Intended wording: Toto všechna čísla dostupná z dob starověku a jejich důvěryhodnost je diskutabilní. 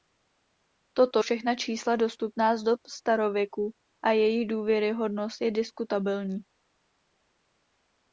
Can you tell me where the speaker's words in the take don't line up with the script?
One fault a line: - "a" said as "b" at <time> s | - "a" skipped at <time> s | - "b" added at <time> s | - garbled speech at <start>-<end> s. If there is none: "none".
none